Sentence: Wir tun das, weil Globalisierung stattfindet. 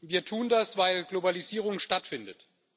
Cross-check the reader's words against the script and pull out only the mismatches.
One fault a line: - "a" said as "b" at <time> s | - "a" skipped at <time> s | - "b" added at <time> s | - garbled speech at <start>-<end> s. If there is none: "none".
none